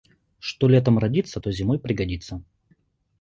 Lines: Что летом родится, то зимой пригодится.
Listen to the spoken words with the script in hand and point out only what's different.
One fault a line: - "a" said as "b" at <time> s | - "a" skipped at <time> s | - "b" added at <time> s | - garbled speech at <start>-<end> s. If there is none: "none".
none